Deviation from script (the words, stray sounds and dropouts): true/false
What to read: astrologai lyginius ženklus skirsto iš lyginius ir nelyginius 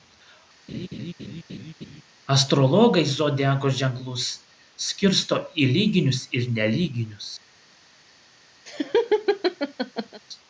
true